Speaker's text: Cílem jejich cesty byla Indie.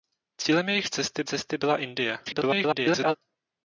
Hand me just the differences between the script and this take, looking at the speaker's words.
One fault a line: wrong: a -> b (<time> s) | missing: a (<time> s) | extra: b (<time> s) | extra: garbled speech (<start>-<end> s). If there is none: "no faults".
extra: cesty (1.2 s)
extra: garbled speech (2.2-3.2 s)